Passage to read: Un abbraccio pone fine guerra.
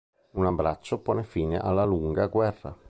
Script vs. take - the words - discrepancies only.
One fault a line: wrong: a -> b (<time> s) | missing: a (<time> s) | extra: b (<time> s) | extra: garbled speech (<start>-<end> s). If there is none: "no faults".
extra: alla lunga (1.6 s)